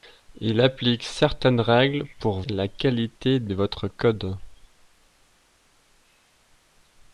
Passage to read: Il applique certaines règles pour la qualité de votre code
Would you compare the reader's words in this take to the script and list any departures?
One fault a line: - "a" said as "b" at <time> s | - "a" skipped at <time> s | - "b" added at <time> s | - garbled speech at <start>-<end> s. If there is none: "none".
none